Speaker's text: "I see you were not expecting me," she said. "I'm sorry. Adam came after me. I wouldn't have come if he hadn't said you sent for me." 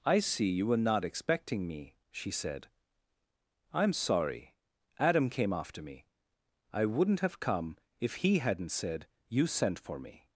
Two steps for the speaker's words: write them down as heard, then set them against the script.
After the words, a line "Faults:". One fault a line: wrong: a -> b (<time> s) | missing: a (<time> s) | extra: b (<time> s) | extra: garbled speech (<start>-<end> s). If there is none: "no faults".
"I see you were not expecting me," she said. "I'm sorry. Adam came after me. I wouldn't have come if he hadn't said you sent for me."
Faults:
no faults